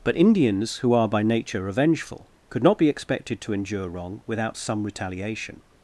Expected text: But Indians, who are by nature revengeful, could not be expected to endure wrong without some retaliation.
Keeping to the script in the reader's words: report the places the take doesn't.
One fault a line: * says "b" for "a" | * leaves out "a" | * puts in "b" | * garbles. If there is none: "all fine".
all fine